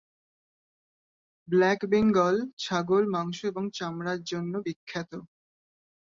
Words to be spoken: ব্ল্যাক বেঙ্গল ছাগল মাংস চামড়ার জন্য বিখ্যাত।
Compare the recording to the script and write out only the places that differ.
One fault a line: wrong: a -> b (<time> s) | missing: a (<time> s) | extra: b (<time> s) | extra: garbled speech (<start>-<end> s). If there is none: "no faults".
extra: এবং (3.5 s)